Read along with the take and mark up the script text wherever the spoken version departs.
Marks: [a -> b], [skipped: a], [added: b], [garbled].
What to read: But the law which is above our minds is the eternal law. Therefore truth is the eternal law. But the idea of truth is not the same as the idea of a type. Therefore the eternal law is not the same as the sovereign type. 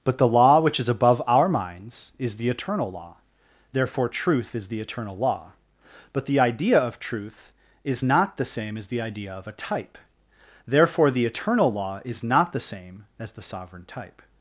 But the law which is above our minds is the eternal law. Therefore truth is the eternal law. But the idea of truth is not the same as the idea of a type. Therefore the eternal law is not the same as the sovereign type.